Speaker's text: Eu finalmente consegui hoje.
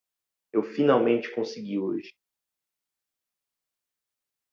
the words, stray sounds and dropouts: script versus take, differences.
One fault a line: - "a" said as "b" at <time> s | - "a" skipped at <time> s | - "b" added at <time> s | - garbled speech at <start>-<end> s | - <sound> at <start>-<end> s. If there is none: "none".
none